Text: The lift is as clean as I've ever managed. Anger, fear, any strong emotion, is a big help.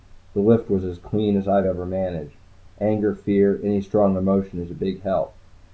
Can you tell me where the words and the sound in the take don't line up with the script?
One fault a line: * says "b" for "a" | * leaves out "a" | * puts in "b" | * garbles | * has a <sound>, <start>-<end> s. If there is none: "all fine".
* says "was" for "is"